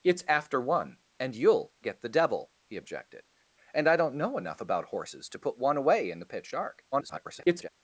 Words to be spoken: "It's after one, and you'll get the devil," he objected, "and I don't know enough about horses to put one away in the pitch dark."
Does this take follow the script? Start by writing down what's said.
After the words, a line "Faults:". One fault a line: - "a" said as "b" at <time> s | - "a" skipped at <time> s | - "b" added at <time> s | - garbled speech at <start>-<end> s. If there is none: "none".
"It's after one, and you'll get the devil," he objected, "and I don't know enough about horses to put one away in the pitch dark." [garbled]
Faults:
- garbled speech at 6.9-7.7 s